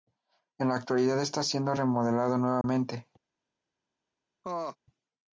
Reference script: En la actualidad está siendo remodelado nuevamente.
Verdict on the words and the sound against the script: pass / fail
fail